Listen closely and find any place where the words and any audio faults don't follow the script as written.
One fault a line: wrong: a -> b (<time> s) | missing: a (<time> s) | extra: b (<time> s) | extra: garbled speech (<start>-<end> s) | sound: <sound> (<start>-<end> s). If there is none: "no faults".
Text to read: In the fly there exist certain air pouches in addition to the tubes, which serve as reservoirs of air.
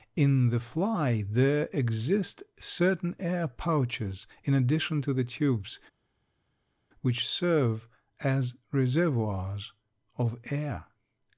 no faults